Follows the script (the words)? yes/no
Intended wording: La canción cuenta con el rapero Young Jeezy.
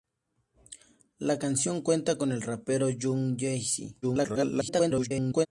no